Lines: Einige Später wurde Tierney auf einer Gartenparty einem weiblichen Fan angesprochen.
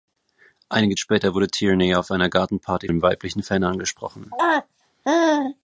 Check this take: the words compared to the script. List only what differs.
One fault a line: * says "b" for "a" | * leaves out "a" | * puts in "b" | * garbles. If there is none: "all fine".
all fine